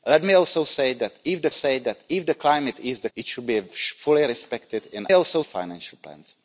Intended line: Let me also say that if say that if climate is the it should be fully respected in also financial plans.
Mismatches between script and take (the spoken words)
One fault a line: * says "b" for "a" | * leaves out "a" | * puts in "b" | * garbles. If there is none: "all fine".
all fine